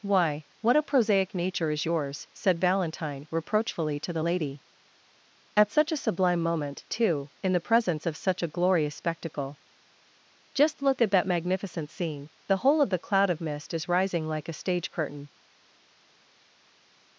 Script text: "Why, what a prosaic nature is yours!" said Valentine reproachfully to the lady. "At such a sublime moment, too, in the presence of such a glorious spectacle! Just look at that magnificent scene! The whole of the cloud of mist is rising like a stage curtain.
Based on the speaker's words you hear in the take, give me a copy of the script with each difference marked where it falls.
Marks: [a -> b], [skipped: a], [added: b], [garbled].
"Why, what a prosaic nature is yours!" said Valentine reproachfully to the lady. "At such a sublime moment, too, in the presence of such a glorious spectacle! Just look at that magnificent scene! The whole of the cloud of mist is rising like a stage curtain.